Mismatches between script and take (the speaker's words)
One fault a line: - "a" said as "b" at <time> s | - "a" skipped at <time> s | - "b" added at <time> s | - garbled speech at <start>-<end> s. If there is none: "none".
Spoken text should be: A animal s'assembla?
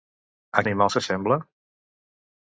none